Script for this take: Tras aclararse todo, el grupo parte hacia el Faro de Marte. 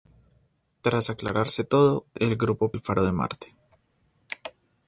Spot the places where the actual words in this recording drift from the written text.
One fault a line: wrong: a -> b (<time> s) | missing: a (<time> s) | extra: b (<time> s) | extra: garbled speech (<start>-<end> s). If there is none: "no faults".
missing: parte hacia (2.7 s)